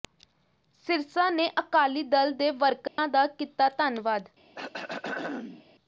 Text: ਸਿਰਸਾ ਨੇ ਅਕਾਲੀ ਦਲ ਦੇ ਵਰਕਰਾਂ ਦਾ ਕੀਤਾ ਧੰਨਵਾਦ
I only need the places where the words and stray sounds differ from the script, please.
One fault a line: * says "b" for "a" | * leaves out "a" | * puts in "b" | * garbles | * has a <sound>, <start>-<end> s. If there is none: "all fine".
* has a dropout, 2.9-3.0 s
* has a throat clearing, 4.6-5.7 s